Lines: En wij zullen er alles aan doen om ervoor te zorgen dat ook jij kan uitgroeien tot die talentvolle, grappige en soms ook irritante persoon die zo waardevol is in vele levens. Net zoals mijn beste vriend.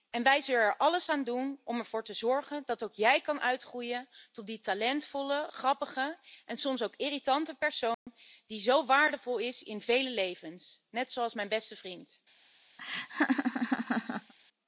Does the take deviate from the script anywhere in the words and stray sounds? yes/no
yes